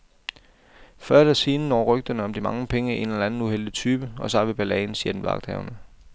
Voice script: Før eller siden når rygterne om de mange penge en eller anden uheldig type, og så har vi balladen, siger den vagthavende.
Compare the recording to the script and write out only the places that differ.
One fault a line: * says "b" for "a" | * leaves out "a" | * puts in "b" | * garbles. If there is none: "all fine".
all fine